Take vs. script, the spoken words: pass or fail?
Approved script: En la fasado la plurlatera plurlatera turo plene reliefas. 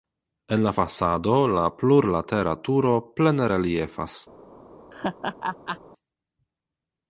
fail